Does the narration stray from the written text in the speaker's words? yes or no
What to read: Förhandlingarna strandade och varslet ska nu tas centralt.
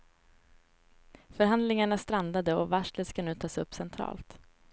yes